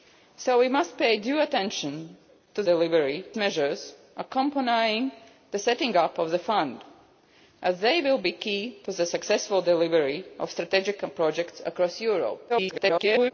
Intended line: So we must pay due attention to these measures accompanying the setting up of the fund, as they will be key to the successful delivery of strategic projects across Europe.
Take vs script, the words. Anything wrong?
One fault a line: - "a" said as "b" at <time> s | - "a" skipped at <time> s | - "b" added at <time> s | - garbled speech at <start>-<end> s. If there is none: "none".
- "these" said as "delivery" at 2.6 s
- garbled speech at 12.5-13.3 s